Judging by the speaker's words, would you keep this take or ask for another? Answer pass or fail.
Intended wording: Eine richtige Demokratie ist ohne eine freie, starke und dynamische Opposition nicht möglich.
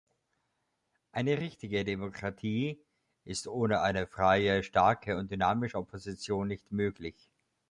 pass